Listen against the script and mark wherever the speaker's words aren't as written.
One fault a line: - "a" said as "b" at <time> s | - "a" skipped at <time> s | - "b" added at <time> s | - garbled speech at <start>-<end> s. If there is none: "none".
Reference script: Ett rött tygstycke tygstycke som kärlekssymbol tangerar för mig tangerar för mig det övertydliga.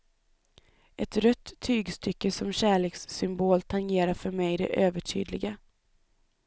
- "tygstycke" skipped at 2.3 s
- "tangerar för mig" skipped at 4.6 s